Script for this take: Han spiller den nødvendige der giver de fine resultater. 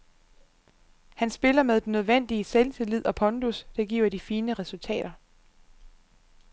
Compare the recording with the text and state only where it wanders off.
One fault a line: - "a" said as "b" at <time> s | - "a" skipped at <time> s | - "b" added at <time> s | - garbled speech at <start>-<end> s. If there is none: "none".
- "med" added at 1.6 s
- "selvtillid og pondus" added at 2.4 s